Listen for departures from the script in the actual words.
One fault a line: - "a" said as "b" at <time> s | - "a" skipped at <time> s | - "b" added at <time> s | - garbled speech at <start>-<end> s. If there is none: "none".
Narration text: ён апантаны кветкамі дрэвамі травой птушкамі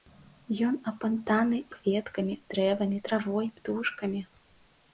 none